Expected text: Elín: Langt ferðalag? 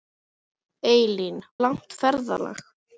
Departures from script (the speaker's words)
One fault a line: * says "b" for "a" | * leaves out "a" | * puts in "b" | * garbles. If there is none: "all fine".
all fine